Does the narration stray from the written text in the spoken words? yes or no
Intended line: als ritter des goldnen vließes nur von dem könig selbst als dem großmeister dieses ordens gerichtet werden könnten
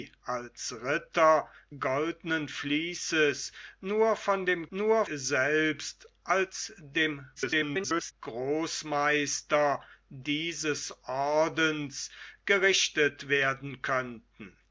yes